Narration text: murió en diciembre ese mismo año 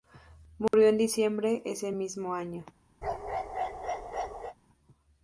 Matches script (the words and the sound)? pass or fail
fail